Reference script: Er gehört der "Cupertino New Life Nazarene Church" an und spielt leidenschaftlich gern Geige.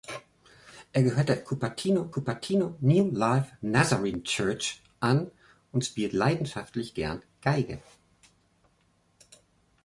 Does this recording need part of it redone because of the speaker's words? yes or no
yes